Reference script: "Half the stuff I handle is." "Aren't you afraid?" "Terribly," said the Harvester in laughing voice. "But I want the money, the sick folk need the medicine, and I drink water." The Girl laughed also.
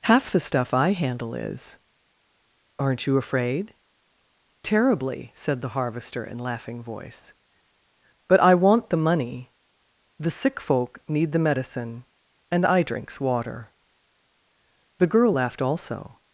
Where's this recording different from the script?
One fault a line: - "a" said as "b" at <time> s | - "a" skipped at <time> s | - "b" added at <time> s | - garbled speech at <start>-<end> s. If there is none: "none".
- "drink" said as "drinks" at 12.8 s